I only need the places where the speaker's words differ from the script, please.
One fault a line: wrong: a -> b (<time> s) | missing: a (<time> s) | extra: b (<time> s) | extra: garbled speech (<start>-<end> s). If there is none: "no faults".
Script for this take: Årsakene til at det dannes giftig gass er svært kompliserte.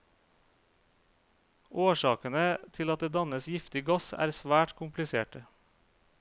no faults